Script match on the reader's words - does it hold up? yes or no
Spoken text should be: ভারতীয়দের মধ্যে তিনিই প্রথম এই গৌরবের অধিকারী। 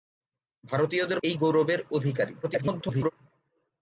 no